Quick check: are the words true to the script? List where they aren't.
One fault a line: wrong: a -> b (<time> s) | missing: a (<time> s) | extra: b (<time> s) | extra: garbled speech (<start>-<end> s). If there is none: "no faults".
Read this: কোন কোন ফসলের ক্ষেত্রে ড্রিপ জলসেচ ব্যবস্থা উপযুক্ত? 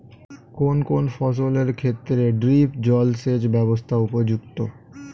no faults